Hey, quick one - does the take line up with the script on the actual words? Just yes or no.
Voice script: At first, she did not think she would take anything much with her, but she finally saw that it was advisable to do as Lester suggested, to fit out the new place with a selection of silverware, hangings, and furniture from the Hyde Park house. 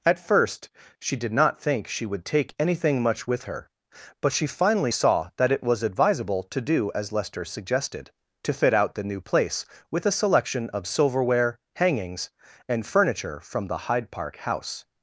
yes